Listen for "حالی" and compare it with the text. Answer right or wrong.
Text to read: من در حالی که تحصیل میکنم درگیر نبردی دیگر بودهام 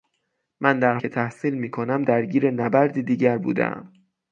wrong